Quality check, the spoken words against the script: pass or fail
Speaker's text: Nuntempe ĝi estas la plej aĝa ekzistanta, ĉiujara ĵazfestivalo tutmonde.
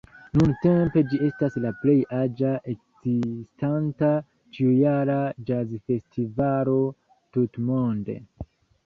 pass